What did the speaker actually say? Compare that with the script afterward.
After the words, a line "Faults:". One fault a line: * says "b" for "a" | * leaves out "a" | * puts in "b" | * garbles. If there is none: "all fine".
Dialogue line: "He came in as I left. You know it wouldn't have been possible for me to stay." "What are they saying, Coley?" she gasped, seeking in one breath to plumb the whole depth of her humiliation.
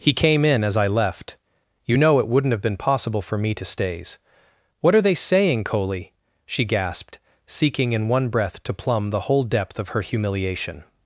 "He came in as I left. You know it wouldn't have been possible for me to stays." "What are they saying, Coley?" she gasped, seeking in one breath to plumb the whole depth of her humiliation.
Faults:
* says "stays" for "stay"